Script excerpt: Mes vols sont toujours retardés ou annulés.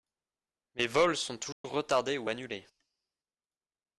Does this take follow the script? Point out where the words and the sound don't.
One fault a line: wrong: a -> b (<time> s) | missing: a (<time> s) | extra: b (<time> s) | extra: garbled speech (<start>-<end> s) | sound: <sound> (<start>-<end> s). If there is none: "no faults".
sound: dropout (1.5-1.6 s)